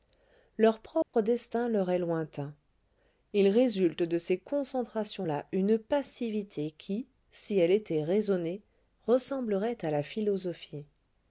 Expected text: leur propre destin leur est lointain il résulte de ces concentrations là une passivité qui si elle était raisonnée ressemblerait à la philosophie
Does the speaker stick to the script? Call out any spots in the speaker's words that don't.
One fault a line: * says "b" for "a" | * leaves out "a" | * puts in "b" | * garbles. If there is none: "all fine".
all fine